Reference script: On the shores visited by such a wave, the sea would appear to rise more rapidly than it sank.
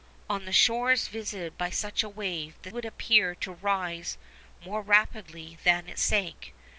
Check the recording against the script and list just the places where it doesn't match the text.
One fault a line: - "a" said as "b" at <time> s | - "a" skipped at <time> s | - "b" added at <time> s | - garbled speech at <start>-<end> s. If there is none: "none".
- "sea" skipped at 2.7 s